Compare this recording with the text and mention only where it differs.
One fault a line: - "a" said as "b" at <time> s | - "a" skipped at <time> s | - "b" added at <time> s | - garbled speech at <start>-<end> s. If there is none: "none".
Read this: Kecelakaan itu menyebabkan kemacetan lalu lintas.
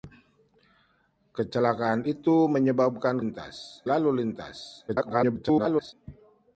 - "kemacetan" said as "lintas" at 3.2 s
- garbled speech at 4.9-5.9 s